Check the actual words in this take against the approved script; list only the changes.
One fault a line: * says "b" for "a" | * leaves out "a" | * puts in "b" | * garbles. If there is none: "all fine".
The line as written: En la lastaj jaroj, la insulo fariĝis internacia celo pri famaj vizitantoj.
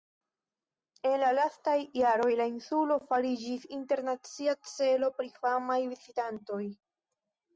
all fine